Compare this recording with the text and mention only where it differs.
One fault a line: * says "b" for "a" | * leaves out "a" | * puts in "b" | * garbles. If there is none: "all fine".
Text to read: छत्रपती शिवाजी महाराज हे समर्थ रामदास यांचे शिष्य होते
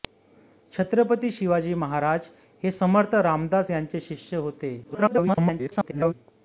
* garbles